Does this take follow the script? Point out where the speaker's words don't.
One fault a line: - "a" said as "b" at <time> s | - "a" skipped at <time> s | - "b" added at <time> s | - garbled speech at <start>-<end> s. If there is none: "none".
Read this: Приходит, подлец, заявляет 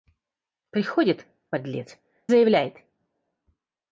none